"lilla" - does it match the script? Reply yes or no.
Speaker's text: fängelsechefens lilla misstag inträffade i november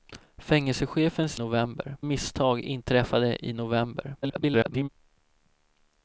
no